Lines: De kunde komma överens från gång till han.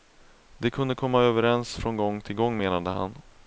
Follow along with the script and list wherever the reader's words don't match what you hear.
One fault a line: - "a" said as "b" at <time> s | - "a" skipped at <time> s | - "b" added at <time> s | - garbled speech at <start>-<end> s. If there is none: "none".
- "gång menade" added at 2.4 s